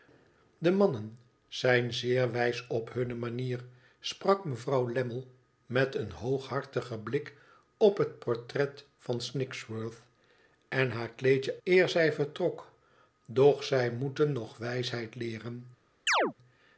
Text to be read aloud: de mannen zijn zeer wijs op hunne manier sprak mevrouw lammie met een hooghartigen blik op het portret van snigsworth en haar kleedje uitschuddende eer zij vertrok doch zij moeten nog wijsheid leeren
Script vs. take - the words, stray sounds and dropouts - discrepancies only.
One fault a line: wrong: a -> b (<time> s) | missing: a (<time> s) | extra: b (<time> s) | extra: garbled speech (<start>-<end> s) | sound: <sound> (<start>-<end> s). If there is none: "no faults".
missing: uitschuddende (11.6 s)
sound: chirp (16.1-16.3 s)